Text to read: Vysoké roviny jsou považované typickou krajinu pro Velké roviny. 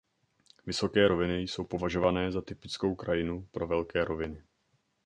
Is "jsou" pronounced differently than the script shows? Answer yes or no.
no